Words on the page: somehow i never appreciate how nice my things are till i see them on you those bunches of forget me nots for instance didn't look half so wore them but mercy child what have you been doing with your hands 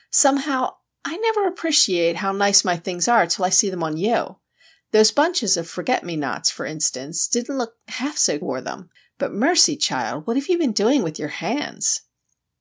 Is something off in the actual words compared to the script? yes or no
no